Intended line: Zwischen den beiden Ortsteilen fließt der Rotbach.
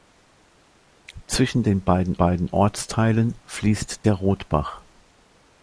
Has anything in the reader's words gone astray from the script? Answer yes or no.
yes